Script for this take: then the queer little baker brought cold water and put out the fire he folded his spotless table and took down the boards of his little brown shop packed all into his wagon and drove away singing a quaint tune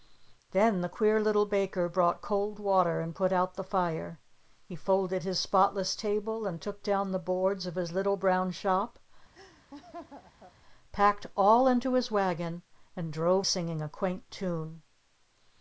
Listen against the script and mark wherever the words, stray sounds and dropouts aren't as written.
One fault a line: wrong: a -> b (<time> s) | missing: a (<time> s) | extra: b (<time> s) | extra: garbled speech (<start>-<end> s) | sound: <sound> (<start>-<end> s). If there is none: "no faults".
sound: laugh (9.3-10.5 s)
missing: away (13.5 s)